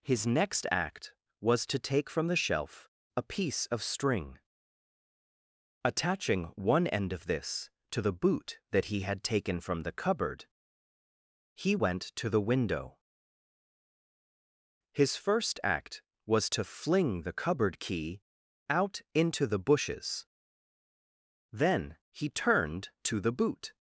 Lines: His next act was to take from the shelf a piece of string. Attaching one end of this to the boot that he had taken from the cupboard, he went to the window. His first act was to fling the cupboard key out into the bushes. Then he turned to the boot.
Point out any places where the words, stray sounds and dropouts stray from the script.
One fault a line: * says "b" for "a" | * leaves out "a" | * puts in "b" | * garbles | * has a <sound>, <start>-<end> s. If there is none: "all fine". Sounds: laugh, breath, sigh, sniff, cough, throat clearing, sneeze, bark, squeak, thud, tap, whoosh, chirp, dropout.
all fine